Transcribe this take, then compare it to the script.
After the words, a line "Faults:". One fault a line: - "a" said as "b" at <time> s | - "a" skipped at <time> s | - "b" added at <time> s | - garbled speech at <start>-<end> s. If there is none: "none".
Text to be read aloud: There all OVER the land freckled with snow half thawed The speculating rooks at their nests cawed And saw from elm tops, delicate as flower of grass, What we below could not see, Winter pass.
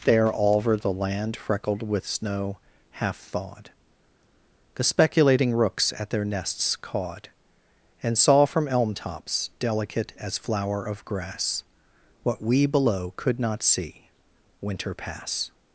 There all OVER the land freckled with snow half thawed The speculating rooks at their nests cawed And saw from elm tops, delicate as flower of grass, What we below could not see, Winter pass.
Faults:
none